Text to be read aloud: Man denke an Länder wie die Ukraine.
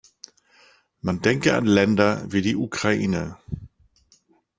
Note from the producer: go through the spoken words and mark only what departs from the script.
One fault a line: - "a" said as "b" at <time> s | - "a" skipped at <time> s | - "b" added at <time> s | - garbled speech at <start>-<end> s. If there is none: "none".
none